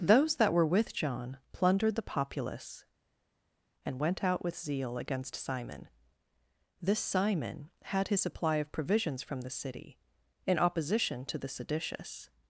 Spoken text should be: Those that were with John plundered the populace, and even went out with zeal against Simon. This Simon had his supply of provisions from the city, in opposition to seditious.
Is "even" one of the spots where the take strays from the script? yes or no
yes